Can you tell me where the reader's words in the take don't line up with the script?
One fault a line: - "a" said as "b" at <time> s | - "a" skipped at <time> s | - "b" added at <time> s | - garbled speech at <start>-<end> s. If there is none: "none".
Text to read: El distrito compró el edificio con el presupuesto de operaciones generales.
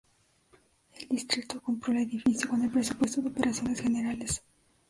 none